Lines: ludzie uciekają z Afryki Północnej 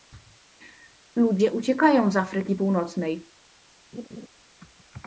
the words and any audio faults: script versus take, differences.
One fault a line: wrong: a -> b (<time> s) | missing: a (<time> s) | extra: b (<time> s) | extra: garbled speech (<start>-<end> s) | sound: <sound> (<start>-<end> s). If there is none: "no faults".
sound: laugh (3.9-4.3 s)